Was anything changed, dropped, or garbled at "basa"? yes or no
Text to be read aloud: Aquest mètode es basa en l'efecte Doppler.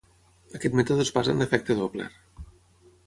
no